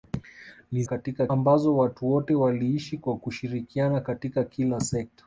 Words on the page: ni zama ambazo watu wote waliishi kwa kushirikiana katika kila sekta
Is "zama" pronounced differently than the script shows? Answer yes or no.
yes